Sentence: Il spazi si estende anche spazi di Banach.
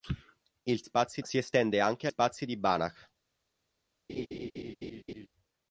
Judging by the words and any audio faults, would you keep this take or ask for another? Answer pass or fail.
fail